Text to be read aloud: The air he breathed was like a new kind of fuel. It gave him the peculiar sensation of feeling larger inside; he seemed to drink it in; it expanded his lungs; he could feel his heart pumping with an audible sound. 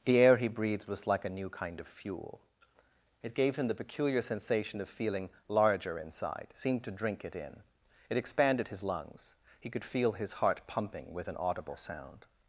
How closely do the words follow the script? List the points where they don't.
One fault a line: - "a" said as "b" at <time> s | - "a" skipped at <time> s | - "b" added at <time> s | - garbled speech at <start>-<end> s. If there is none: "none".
- "he" skipped at 6.5 s